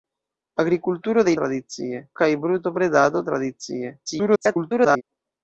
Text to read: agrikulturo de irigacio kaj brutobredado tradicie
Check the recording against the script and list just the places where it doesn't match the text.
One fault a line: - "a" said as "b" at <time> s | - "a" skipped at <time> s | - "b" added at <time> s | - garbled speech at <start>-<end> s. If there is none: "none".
- "irigacio" said as "tradicie" at 1.4 s
- garbled speech at 4.1-5.0 s